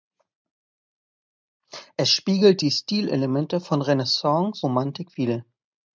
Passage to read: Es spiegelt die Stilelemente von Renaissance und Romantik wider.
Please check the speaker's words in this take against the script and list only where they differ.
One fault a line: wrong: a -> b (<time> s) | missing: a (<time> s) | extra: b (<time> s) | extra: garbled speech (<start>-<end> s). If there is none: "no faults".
missing: und (4.6 s)